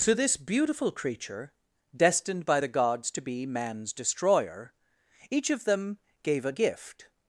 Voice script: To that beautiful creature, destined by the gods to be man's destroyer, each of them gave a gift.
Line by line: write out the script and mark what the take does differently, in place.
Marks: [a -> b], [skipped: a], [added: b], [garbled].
To [that -> this] beautiful creature, destined by the gods to be man's destroyer, each of them gave a gift.